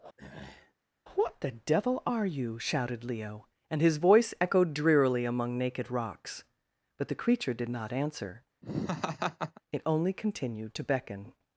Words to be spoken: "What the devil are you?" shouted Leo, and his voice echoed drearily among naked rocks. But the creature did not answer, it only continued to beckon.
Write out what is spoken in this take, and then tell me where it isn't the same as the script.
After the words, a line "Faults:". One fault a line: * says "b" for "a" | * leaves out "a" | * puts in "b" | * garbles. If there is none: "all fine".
"What the devil are you?" shouted Leo, and his voice echoed drearily among naked rocks. But the creature did not answer, it only continued to beckon.
Faults:
all fine